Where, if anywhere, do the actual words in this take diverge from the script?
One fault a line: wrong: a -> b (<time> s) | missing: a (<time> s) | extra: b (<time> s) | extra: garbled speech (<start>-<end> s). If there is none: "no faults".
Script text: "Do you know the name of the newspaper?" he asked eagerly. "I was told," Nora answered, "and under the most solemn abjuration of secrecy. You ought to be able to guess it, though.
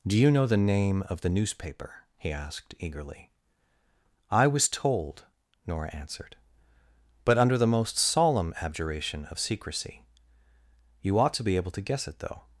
wrong: and -> but (7.2 s)